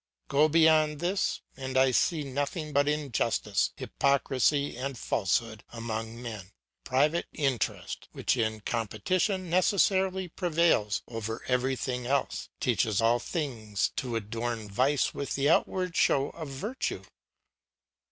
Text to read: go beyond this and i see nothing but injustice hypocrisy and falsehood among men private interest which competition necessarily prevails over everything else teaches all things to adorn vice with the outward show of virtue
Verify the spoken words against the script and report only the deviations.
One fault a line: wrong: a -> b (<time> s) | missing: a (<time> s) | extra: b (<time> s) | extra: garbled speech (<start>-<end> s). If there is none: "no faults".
extra: in (8.4 s)